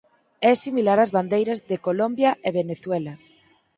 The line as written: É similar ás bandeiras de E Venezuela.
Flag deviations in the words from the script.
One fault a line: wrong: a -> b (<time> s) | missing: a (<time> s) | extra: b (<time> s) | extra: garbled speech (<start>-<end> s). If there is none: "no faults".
extra: Colombia (1.9 s)